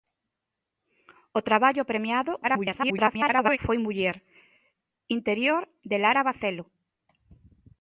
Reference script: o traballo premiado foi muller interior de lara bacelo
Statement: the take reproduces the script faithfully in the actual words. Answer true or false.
false